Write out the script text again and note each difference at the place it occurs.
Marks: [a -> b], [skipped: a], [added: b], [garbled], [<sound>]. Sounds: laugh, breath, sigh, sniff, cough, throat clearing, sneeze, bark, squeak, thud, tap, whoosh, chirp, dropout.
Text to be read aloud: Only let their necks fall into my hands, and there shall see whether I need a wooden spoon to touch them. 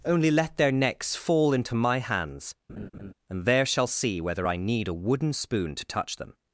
Only let their necks fall into my hands, [laugh] and there shall see whether I need a wooden spoon to touch them.